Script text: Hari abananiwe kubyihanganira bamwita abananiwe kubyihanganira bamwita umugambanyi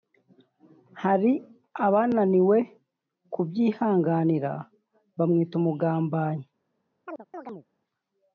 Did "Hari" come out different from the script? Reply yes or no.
no